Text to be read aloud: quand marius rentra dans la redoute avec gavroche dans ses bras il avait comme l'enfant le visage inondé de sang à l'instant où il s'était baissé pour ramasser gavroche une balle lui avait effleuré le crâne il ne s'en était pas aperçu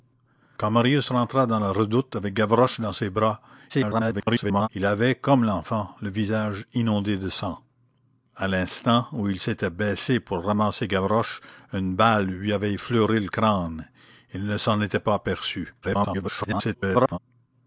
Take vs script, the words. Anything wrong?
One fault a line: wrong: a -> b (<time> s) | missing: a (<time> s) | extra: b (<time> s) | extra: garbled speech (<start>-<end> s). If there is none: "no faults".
extra: garbled speech (3.7-4.7 s)
extra: garbled speech (15.8-17.2 s)